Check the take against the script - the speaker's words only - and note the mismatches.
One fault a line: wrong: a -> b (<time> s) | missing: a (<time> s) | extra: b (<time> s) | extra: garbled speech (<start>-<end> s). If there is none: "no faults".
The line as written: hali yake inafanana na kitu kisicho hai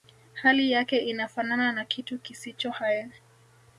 no faults